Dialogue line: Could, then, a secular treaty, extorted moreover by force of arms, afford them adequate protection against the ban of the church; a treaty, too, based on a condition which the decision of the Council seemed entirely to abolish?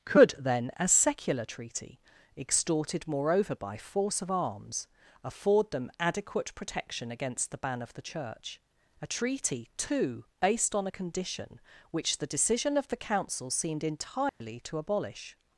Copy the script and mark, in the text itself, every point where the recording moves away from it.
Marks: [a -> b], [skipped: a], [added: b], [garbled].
Could, then, a secular treaty, extorted moreover by force of arms, afford them adequate protection against the ban of the church; a treaty, too, based on a condition which the decision of the Council seemed entirely to abolish?